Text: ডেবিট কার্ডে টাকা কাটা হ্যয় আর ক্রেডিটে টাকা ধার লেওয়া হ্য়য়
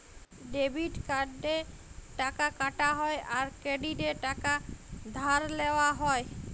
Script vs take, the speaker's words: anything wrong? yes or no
no